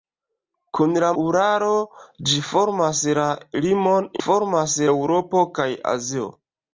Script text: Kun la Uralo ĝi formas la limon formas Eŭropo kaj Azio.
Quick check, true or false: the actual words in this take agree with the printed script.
true